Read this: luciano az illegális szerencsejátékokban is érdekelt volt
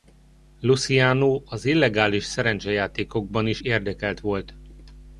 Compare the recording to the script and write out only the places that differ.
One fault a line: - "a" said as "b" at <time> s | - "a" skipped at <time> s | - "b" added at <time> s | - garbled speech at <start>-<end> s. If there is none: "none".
none